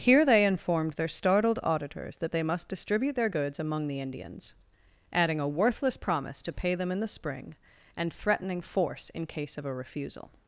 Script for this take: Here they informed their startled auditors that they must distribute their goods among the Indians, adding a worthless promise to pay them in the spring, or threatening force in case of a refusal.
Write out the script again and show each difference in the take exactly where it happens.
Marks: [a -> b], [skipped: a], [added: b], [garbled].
Here they informed their startled auditors that they must distribute their goods among the Indians, adding a worthless promise to pay them in the spring, [or -> and] threatening force in case of a refusal.